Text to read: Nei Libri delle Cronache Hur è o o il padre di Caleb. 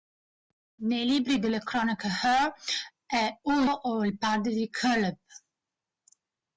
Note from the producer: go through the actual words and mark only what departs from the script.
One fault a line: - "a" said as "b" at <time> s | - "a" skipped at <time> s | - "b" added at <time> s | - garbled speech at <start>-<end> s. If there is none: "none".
none